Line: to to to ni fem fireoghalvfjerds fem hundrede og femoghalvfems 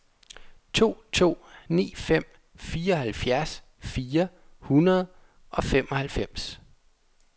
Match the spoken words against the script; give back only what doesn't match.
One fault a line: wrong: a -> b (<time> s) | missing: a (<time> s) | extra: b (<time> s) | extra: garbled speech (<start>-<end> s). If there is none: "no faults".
missing: to (1.4 s)
wrong: fem -> fire (3.8 s)